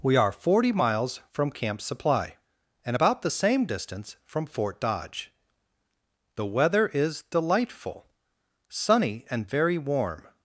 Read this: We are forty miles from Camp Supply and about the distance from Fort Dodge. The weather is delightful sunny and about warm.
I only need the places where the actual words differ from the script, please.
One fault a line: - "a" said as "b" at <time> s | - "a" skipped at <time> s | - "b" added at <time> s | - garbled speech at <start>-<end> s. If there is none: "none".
- "same" added at 3.3 s
- "about" said as "very" at 9.5 s